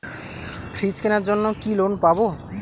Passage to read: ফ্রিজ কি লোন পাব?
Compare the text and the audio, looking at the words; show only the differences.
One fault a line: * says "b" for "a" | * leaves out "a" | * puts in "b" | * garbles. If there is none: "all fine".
* puts in "কেনার জন্য"